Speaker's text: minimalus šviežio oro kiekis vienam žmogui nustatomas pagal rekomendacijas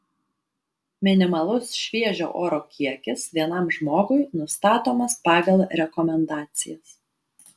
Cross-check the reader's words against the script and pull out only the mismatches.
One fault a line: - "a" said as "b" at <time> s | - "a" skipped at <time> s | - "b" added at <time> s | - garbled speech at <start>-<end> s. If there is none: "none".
none